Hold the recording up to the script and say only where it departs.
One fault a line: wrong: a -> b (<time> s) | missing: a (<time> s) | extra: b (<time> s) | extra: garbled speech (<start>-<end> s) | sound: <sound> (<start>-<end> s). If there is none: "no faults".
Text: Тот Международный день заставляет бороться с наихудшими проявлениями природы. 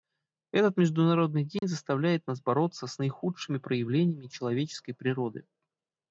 wrong: Тот -> Этот (0.5 s)
sound: dropout (1.6-1.6 s)
extra: нас (2.2 s)
extra: человеческой (4.3 s)